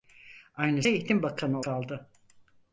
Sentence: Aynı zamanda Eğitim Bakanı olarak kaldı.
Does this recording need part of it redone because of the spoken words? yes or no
yes